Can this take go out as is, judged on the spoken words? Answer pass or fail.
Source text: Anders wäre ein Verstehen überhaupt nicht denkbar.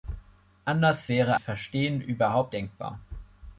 fail